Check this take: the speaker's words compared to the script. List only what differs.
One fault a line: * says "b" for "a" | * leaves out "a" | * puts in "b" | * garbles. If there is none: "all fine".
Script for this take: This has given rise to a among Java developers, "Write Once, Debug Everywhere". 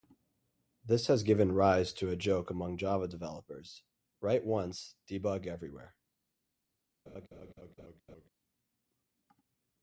* puts in "joke"